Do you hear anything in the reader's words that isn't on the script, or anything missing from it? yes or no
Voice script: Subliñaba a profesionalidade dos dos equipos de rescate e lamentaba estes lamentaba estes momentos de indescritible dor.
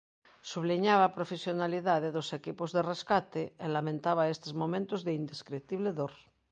yes